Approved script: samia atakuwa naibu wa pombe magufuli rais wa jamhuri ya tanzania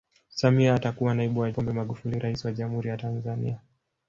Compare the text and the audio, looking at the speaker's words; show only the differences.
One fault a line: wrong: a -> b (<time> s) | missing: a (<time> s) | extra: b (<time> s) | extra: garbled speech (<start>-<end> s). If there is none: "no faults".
no faults